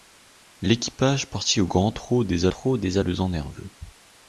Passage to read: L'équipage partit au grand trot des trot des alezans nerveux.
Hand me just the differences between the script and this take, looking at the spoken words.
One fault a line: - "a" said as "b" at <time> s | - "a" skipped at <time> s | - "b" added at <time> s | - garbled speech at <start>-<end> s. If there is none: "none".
none